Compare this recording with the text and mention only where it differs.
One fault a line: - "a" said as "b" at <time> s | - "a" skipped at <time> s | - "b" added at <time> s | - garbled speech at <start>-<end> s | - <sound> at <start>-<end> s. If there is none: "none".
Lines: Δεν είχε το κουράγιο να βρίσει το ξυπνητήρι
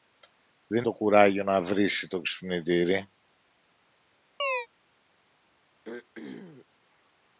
- "είχε" skipped at 0.8 s
- chirp at 4.4-4.7 s
- throat clearing at 5.8-6.7 s